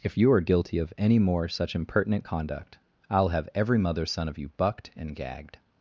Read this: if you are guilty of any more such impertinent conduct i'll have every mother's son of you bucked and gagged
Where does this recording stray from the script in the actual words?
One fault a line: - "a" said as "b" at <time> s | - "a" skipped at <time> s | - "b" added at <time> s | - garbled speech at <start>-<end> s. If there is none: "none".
none